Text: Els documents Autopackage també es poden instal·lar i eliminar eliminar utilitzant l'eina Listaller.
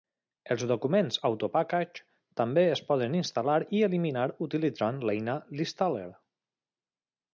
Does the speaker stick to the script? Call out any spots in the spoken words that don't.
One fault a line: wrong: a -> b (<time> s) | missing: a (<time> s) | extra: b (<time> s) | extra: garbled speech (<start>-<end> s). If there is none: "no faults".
missing: eliminar (4.3 s)